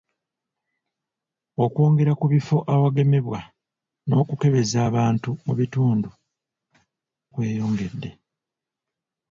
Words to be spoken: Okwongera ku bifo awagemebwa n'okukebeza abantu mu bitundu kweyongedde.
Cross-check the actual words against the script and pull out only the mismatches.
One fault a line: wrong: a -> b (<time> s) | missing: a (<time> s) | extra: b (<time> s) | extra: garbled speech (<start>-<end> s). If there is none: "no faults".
no faults